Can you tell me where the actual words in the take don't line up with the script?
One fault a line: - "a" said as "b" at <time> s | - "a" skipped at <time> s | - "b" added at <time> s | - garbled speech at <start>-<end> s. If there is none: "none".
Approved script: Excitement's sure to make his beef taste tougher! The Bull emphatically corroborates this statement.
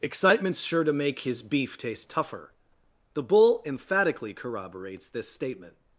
none